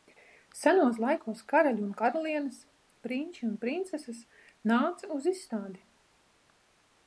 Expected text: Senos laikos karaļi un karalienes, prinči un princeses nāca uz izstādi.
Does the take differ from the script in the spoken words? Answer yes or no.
no